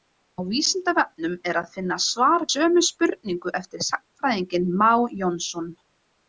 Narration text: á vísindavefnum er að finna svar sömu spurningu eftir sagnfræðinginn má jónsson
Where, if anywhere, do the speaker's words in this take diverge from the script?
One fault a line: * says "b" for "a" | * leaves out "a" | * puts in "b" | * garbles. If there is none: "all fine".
all fine